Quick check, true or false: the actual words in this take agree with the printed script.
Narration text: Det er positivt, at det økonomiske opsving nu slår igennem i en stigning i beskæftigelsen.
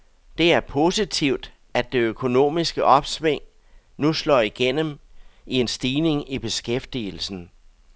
true